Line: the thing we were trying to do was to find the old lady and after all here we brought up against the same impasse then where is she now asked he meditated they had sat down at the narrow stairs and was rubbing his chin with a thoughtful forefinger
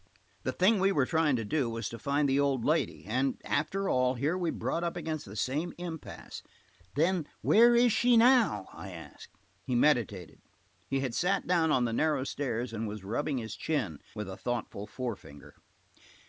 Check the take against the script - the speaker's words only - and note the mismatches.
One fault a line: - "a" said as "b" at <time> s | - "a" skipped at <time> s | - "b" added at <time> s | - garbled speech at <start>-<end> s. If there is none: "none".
- "i" added at 8.7 s
- "they" said as "he" at 10.9 s
- "at" said as "on" at 11.7 s